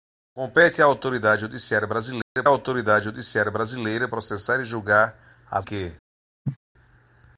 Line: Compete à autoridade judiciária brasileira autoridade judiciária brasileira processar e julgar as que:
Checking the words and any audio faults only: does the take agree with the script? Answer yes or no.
no